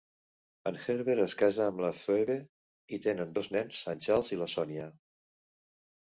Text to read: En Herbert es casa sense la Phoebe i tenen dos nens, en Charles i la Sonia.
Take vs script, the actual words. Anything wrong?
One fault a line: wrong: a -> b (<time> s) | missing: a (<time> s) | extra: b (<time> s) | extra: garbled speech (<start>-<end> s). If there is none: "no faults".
wrong: sense -> amb (1.7 s)